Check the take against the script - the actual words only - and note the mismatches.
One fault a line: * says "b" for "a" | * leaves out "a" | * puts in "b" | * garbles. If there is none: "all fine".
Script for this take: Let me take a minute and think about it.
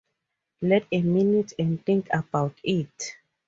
* leaves out "me take"